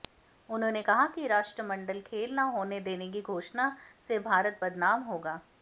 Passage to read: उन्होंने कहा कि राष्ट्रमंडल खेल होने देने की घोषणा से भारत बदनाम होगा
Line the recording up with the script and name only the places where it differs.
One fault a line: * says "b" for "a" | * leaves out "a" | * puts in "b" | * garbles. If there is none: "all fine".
* puts in "न"